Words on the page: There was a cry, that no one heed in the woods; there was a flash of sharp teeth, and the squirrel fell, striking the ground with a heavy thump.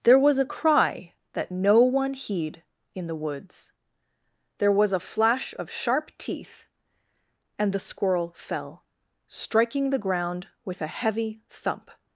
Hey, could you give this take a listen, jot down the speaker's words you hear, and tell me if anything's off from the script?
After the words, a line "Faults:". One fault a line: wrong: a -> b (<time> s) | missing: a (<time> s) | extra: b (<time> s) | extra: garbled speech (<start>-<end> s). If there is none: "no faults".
There was a cry, that no one heed in the woods; there was a flash of sharp teeth, and the squirrel fell, striking the ground with a heavy thump.
Faults:
no faults